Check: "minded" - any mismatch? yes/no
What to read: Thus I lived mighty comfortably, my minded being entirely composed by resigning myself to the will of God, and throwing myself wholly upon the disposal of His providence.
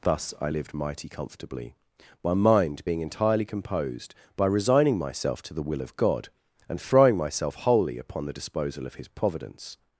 yes